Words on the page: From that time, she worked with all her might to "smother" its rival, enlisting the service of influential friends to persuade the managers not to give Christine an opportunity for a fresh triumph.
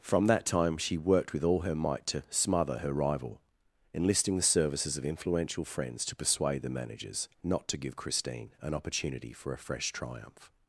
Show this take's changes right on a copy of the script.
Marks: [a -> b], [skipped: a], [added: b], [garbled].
From that time, she worked with all her might to "smother" [its -> her] rival, enlisting the [service -> services] of influential friends to persuade the managers not to give Christine an opportunity for a fresh triumph.